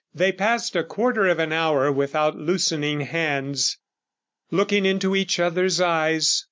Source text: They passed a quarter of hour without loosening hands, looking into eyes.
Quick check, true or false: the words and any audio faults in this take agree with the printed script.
false